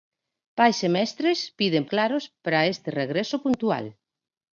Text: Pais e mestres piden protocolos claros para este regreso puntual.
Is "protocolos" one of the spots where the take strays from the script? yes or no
yes